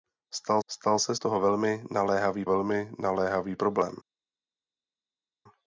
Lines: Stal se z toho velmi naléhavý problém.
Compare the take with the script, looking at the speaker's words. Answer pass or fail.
fail